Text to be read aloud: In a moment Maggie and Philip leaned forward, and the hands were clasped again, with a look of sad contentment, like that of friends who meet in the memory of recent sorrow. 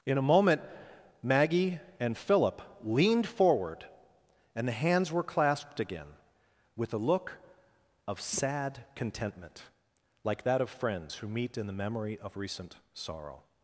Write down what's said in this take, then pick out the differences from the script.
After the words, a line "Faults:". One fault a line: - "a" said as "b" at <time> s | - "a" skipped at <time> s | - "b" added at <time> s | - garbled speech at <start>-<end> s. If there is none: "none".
In a moment Maggie and Philip leaned forward, and the hands were clasped again, with a look of sad contentment, like that of friends who meet in the memory of recent sorrow.
Faults:
none